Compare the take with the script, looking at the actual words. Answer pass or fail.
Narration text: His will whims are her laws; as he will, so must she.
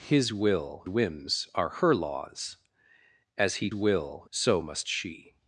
pass